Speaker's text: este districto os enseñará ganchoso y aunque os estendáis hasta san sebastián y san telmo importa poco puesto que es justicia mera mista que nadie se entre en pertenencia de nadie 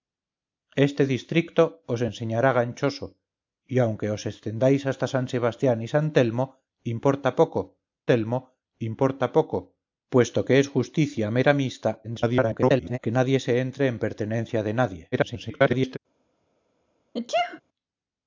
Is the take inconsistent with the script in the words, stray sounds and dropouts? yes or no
yes